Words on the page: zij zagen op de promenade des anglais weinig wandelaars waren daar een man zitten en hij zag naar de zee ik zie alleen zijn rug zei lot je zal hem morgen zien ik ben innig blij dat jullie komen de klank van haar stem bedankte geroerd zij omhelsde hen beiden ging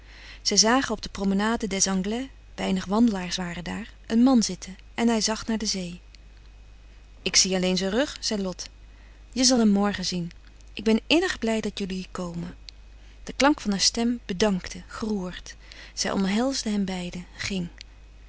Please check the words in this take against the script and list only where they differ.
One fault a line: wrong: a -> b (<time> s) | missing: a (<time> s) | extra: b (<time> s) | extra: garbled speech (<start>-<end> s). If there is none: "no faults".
no faults